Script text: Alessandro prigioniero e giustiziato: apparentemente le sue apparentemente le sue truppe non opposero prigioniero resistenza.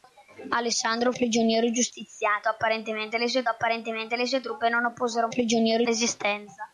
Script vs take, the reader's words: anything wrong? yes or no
no